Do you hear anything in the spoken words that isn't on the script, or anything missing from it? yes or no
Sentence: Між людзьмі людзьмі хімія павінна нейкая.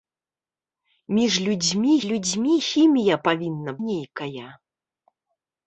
no